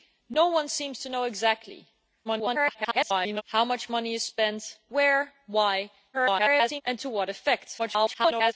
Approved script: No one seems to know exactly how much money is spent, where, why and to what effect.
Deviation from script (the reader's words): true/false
true